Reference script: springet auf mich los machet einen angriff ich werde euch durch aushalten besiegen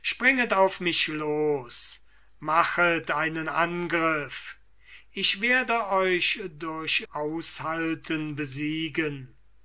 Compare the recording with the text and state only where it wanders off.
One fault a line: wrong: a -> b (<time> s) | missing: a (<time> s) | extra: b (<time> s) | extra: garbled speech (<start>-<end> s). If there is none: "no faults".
no faults